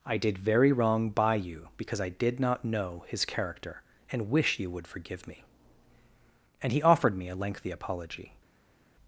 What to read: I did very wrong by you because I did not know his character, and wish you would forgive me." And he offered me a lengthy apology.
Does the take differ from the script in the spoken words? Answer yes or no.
no